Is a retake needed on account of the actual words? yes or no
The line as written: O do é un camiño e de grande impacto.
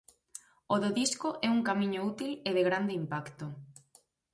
yes